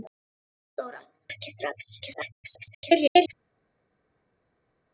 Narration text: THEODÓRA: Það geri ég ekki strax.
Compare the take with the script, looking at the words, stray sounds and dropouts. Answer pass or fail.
fail